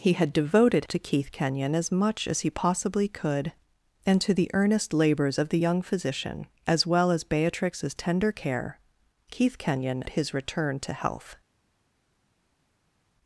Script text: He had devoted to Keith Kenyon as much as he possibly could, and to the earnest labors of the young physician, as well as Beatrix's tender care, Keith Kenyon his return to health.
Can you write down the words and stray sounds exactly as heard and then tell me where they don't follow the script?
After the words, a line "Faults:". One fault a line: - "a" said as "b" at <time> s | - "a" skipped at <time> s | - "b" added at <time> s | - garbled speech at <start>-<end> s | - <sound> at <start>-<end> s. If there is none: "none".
He had devoted to Keith Kenyon as much as he possibly could, and to the earnest labors of the young physician, as well as Beatrix's tender care, Keith Kenyon his return to health.
Faults:
none